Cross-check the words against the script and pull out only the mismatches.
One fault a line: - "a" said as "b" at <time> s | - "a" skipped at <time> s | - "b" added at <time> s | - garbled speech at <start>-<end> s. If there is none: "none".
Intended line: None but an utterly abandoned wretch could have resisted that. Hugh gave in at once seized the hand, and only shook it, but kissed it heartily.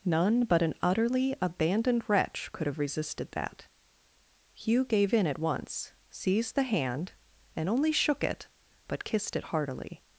none